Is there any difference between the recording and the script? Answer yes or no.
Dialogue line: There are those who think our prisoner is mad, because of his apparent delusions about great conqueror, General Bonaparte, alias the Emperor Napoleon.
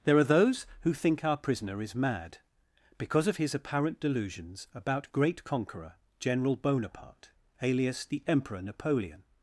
no